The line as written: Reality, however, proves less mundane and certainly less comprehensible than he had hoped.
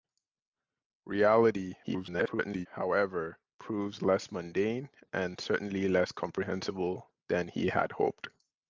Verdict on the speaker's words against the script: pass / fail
fail